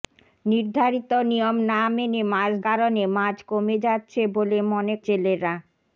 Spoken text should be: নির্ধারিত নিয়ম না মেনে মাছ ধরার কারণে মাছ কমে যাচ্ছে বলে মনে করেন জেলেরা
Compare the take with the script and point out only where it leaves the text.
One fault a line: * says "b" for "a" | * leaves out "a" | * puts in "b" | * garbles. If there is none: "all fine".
* leaves out "ধরার"
* leaves out "করেন"